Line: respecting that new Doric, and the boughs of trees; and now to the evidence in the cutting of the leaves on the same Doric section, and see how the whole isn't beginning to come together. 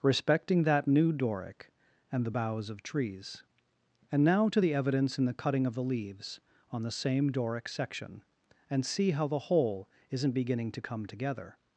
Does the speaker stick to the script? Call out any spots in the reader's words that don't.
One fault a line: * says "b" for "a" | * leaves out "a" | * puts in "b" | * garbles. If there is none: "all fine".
all fine